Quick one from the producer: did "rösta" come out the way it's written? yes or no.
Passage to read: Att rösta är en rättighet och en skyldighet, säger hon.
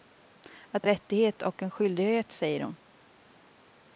no